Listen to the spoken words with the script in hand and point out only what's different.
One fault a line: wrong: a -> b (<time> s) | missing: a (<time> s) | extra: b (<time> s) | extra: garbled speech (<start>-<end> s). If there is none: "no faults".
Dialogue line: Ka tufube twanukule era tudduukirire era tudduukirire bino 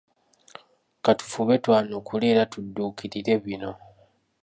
missing: era tudduukirire (3.3 s)